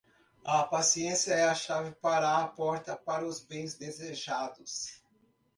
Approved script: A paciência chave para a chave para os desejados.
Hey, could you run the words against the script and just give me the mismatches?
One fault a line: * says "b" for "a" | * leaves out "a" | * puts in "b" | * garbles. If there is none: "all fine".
* puts in "é a"
* says "porta" for "chave"
* puts in "bens"